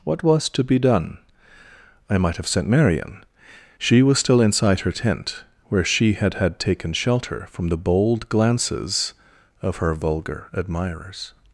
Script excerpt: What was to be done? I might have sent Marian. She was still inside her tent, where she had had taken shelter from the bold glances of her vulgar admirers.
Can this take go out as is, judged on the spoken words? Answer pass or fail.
pass